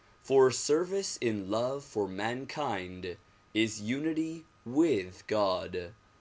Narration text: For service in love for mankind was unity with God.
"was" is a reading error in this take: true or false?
true